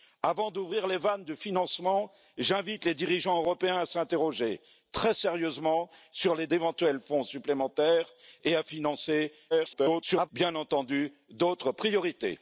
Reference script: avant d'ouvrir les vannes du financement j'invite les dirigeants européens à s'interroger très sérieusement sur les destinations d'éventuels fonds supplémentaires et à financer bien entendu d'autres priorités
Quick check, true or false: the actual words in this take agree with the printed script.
false